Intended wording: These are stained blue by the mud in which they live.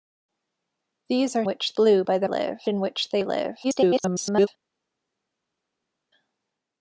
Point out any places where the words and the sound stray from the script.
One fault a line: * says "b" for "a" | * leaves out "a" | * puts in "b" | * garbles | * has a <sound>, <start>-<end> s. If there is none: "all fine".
* says "which" for "stained"
* says "live" for "mud"
* garbles